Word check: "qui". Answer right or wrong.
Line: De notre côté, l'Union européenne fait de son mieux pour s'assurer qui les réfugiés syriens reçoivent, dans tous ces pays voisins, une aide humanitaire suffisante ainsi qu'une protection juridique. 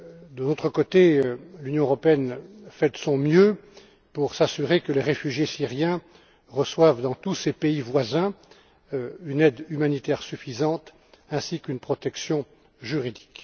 wrong